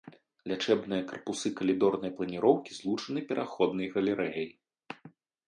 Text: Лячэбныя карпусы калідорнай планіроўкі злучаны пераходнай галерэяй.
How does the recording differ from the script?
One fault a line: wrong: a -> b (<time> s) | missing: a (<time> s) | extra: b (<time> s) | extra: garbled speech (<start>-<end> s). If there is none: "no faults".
no faults